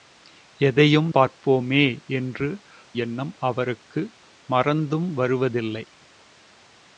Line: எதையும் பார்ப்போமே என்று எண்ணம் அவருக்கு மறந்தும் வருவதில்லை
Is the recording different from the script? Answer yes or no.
no